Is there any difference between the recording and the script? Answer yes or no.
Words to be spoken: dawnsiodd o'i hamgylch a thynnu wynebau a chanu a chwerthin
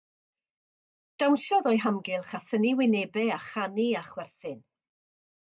no